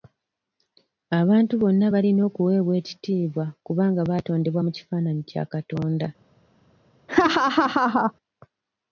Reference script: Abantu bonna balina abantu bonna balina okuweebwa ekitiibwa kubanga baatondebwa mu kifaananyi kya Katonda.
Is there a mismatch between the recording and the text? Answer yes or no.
yes